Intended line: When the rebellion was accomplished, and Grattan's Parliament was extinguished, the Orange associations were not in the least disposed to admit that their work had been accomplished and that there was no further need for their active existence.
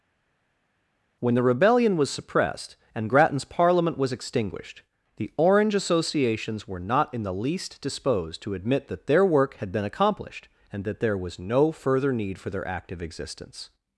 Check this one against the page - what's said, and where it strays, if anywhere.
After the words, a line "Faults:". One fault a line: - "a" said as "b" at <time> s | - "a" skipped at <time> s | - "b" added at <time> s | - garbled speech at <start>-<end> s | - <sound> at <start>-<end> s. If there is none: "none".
When the rebellion was suppressed, and Grattan's Parliament was extinguished, the Orange associations were not in the least disposed to admit that their work had been accomplished and that there was no further need for their active existence.
Faults:
- "accomplished" said as "suppressed" at 2.1 s